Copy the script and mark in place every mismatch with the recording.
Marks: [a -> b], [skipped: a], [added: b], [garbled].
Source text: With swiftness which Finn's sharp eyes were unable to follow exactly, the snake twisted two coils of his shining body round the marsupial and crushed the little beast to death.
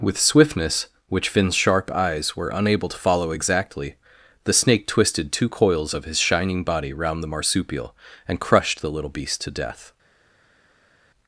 With swiftness which Finn's sharp eyes were unable to follow exactly, the snake twisted two coils of his shining body round the marsupial and crushed the little beast to death.